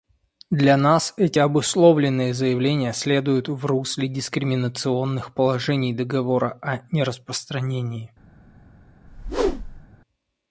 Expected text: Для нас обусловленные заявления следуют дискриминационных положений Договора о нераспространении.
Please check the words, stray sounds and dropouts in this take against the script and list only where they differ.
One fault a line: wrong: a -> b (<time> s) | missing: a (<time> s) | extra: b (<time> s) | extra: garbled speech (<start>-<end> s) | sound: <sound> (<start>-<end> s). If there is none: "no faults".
extra: эти (1.1 s)
extra: в русле (3.5 s)
sound: whoosh (9.1-9.9 s)